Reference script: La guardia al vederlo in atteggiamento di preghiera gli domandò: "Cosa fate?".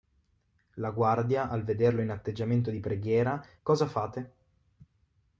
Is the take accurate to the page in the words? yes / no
no